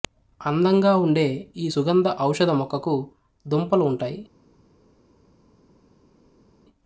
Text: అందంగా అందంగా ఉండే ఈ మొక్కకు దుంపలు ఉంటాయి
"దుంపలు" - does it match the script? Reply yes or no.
yes